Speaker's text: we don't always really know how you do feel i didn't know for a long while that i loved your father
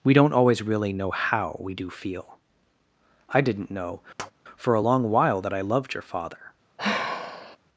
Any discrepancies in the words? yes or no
yes